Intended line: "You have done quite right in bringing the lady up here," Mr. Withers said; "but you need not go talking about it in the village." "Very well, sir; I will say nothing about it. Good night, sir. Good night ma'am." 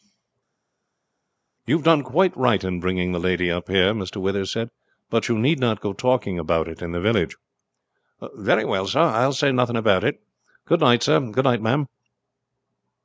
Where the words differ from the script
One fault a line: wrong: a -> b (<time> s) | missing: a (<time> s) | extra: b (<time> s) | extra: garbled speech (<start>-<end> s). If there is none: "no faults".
no faults